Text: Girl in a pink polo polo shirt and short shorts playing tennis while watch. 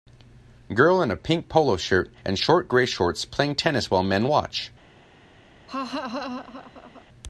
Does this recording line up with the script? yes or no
no